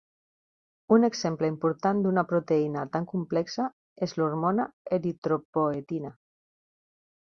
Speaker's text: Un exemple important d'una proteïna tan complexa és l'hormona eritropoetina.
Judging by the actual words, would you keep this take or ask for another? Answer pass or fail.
pass